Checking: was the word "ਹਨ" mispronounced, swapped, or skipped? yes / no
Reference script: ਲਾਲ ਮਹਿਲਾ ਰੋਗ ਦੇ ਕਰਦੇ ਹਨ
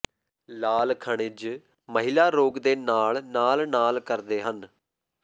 no